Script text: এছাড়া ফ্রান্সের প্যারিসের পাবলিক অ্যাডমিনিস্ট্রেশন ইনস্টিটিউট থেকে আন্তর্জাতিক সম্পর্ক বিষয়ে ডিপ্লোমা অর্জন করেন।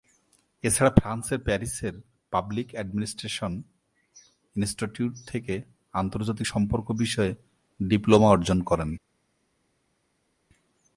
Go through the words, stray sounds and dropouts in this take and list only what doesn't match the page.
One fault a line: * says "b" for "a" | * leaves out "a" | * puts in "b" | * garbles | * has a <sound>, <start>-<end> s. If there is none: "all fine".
all fine